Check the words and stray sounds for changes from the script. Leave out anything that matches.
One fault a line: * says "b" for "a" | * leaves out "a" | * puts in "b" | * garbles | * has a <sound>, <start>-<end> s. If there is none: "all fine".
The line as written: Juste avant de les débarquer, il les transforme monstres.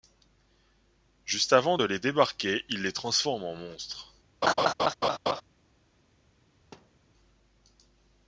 * puts in "en"
* has a laugh, 4.4-5.4 s
* has a thud, 6.7-7.1 s